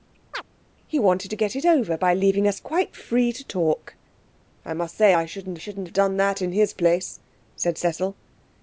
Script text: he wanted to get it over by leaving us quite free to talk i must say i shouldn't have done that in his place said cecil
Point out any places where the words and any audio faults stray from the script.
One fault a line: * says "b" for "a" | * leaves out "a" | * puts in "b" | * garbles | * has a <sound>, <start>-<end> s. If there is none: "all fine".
* has a chirp, 0.3-0.4 s
* puts in "shouldn't"